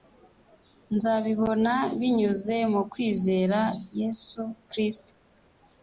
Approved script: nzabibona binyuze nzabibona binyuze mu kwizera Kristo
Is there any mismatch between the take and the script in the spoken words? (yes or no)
yes